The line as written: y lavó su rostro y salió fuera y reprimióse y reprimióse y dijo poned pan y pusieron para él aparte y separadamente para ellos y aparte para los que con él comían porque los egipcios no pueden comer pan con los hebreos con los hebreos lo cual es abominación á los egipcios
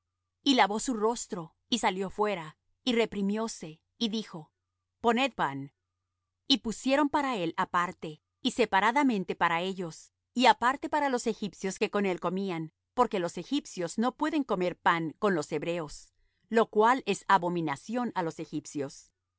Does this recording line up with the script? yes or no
no